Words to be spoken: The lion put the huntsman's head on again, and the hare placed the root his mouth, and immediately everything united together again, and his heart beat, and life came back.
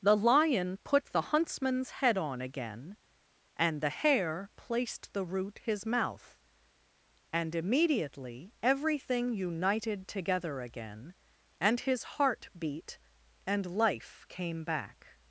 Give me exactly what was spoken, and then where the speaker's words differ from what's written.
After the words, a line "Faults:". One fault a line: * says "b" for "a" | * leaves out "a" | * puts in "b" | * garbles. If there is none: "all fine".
The lion put the huntsman's head on again, and the hare placed the root his mouth, and immediately everything united together again, and his heart beat, and life came back.
Faults:
all fine